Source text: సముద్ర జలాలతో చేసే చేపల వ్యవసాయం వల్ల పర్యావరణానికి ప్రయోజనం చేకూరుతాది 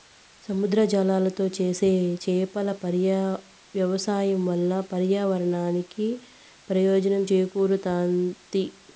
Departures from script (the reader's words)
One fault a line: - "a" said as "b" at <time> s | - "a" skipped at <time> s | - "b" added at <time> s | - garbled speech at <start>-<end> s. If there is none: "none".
none